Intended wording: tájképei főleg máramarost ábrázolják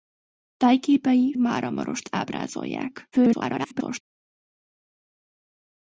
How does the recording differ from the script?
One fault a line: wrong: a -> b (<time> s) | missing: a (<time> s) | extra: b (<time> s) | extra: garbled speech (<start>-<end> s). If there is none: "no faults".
missing: főleg (1.3 s)
extra: garbled speech (3.1-4.0 s)